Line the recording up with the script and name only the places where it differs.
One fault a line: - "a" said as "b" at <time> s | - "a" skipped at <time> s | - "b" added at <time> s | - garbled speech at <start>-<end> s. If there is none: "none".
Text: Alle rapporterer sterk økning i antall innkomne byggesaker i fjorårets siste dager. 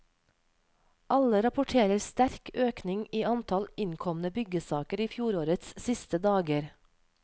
none